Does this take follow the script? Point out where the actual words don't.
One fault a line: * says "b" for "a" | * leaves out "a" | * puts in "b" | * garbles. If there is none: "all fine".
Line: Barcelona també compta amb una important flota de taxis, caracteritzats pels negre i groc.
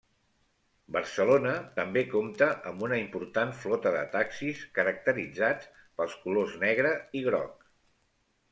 * puts in "colors"